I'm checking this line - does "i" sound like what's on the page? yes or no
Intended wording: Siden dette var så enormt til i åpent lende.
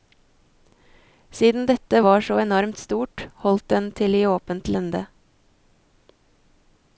yes